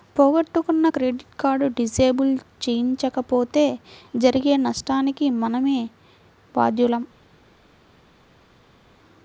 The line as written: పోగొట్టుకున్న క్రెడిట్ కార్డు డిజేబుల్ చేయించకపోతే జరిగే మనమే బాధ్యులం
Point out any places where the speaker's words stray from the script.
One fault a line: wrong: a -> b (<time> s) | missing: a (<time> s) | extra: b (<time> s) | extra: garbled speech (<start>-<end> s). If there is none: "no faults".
extra: నష్టానికి (4.6 s)